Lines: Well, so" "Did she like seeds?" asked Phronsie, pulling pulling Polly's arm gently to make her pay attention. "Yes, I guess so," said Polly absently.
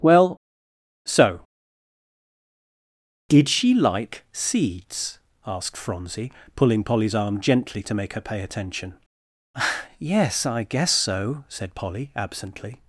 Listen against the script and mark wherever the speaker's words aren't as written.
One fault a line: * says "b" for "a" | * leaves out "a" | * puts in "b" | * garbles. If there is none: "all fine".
* leaves out "pulling"